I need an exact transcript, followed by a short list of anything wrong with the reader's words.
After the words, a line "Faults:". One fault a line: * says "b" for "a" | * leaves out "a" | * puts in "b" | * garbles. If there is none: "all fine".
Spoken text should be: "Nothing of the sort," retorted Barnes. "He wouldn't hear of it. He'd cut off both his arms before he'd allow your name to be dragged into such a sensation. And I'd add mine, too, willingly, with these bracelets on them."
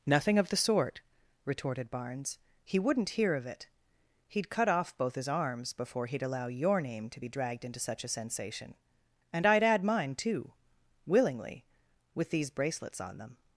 "Nothing of the sort," retorted Barnes. "He wouldn't hear of it. He'd cut off both his arms before he'd allow your name to be dragged into such a sensation. And I'd add mine, too, willingly, with these bracelets on them."
Faults:
all fine